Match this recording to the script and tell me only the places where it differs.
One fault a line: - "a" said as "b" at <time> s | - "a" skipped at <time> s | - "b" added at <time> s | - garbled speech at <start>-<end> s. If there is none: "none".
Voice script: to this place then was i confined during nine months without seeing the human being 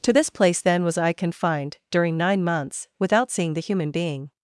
none